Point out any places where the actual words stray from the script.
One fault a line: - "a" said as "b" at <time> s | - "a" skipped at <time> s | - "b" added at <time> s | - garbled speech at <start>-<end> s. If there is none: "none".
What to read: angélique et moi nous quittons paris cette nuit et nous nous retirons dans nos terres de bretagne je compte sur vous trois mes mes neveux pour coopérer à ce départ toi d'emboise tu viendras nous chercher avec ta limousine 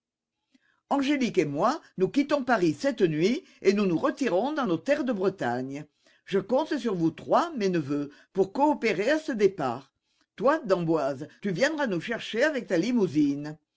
- "mes" skipped at 7.7 s